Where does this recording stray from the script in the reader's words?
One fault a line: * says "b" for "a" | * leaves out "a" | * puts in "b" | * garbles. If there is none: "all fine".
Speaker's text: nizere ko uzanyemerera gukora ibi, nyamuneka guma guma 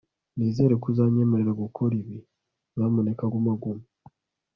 all fine